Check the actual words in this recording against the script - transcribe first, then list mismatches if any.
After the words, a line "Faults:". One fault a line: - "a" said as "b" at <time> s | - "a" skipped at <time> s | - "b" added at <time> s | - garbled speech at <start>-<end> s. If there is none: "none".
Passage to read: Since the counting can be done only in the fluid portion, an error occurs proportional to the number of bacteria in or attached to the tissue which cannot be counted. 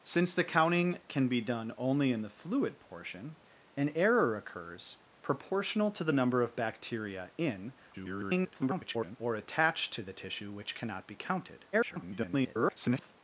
Since the counting can be done only in the fluid portion, an error occurs proportional to the number of bacteria in [garbled] or attached to the tissue which cannot be counted. [garbled]
Faults:
- garbled speech at 7.9-9.2 s
- garbled speech at 11.7-13.1 s